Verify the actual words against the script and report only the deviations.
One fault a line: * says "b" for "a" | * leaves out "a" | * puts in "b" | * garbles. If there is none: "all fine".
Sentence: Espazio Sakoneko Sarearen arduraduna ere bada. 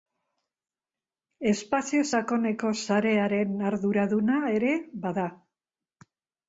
all fine